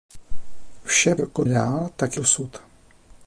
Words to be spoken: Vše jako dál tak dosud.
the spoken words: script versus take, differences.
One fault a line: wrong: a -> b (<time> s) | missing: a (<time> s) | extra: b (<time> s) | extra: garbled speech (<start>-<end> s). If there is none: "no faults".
no faults